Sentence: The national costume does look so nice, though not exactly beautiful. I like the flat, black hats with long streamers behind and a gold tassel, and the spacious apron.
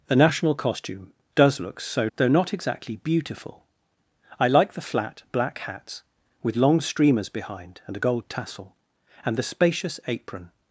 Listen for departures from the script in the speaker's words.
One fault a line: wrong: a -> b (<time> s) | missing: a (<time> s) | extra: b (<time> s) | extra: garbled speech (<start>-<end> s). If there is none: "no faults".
missing: nice (2.1 s)